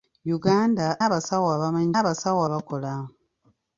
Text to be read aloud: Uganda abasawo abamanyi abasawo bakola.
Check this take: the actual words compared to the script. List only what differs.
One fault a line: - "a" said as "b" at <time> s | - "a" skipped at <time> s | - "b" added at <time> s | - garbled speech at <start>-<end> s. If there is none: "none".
none